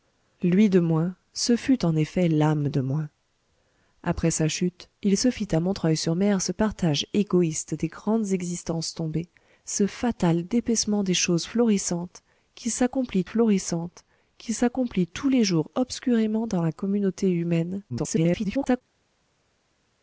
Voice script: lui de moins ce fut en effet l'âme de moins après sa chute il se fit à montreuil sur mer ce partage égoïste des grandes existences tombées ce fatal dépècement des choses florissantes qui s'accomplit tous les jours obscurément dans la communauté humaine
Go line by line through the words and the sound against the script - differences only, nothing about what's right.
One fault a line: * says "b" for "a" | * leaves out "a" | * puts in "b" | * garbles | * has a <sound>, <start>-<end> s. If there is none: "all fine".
* puts in "florissantes qui s'accomplit"
* garbles